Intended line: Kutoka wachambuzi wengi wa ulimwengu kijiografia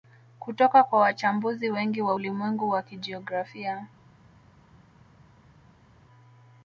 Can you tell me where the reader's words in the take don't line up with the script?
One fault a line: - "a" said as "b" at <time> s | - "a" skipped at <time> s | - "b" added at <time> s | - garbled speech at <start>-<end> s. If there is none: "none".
- "kwa" added at 0.8 s
- "wa" added at 2.7 s